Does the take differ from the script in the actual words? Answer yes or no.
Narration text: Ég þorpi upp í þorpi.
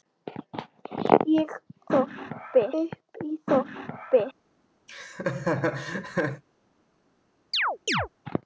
no